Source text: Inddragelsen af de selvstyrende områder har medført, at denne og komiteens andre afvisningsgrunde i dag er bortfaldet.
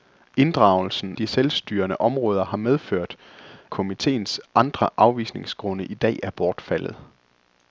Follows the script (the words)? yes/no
no